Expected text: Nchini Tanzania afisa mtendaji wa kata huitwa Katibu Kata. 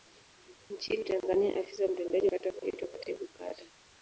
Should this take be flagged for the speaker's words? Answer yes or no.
yes